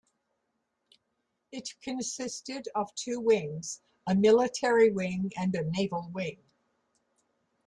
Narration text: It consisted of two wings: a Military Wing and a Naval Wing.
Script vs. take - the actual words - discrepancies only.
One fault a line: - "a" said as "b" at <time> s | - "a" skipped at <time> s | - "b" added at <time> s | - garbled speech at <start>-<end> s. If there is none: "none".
none